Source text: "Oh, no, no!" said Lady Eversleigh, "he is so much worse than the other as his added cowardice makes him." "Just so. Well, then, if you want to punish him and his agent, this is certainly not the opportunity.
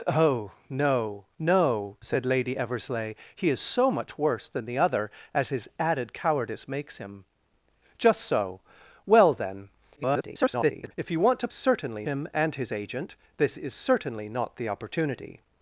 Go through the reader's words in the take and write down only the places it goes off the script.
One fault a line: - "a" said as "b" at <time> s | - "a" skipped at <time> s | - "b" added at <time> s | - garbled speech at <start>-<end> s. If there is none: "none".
- garbled speech at 10.0-10.9 s
- "punish" said as "certainly" at 11.5 s